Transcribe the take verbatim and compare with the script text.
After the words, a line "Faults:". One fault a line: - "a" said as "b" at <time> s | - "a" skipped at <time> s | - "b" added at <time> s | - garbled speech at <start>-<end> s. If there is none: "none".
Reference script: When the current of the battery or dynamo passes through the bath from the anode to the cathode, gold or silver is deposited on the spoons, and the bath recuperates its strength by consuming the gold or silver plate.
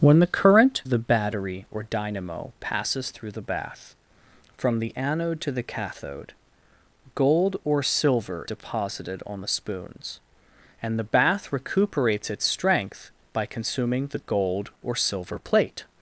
When the current the battery or dynamo passes through the bath from the anode to the cathode, gold or silver deposited on the spoons, and the bath recuperates its strength by consuming the gold or silver plate.
Faults:
- "of" skipped at 0.8 s
- "is" skipped at 8.5 s